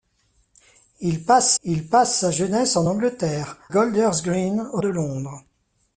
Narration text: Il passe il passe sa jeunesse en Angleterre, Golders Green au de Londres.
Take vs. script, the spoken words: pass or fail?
pass